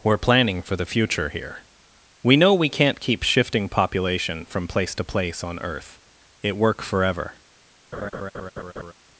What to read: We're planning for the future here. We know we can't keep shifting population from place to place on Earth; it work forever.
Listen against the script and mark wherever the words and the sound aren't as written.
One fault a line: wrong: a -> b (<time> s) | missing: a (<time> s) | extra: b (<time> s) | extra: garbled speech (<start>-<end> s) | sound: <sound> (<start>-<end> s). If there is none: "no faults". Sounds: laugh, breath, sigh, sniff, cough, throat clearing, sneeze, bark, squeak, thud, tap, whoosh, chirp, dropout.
sound: laugh (7.9-8.9 s)